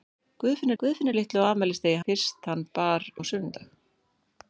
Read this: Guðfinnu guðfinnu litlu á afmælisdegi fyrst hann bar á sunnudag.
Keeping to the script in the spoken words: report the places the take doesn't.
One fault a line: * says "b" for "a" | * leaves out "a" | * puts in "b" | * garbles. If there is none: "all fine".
all fine